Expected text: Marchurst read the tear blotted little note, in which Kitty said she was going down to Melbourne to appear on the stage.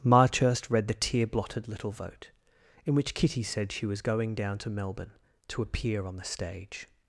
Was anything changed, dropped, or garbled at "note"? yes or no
yes